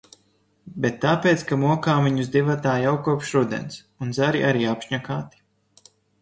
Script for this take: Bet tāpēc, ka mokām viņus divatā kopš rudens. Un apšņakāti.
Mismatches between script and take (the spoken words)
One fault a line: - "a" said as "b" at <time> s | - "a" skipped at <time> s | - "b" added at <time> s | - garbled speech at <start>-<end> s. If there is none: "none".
- "jau" added at 2.9 s
- "zari arī" added at 4.2 s